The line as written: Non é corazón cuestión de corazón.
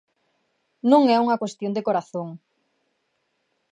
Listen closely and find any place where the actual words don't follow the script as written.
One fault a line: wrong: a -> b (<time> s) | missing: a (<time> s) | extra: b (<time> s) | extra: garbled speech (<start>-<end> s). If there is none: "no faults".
wrong: corazón -> unha (1.2 s)